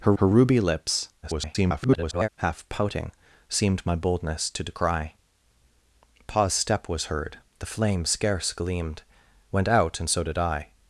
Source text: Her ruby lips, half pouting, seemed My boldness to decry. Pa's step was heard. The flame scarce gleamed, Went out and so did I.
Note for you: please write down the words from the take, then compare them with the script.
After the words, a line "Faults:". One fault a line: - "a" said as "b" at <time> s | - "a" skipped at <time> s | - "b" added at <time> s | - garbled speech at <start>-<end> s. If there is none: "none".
Her her ruby lips, [garbled] half pouting, seemed My boldness to decry. Pa's step was heard. The flame scarce gleamed, Went out and so did I.
Faults:
- "her" added at 0.2 s
- garbled speech at 1.2-2.3 s